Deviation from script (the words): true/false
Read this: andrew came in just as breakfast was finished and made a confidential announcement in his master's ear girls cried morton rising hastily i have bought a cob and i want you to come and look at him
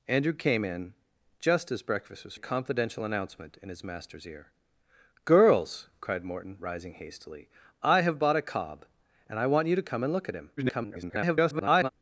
true